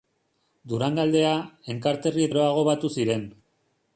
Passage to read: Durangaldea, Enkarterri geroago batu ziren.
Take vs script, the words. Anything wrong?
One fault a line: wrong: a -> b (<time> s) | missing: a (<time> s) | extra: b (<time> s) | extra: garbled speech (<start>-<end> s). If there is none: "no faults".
no faults